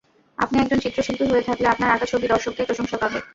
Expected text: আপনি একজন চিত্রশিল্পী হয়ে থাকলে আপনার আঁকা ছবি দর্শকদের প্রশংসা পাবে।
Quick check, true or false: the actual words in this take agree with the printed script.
true